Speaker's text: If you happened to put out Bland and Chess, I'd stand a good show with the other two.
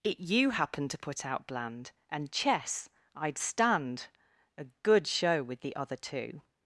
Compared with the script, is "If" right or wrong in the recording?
wrong